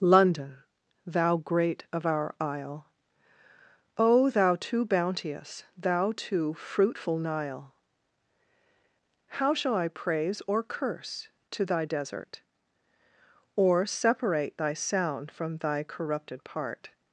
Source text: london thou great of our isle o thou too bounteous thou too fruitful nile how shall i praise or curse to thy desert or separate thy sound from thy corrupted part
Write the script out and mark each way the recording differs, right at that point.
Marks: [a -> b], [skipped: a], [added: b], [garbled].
london thou great of our isle o thou too bounteous thou too fruitful nile how shall i praise or curse to thy desert or separate thy sound from thy corrupted part